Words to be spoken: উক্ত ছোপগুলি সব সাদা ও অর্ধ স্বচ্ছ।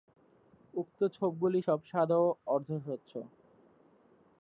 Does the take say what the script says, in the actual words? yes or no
yes